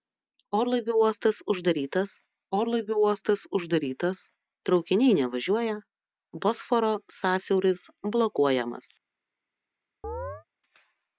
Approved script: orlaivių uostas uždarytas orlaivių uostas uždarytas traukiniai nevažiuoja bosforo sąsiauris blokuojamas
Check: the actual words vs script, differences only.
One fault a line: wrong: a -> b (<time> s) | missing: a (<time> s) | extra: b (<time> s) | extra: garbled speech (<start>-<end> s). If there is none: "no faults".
no faults